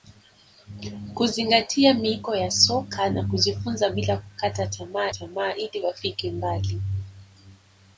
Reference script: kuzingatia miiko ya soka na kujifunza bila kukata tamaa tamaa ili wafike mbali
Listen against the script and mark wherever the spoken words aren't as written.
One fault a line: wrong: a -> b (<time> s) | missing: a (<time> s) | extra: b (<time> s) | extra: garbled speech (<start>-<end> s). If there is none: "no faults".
no faults